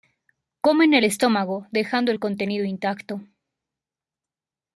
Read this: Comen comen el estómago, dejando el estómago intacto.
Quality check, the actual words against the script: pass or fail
fail